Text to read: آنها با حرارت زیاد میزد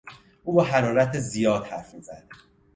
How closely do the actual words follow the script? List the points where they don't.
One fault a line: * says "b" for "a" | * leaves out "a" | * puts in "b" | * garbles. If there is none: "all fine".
* says "او" for "آنها"
* puts in "حرف"